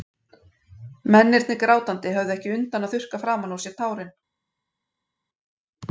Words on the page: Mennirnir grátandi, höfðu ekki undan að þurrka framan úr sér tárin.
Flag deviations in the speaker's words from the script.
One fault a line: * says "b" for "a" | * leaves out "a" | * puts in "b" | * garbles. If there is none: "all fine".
all fine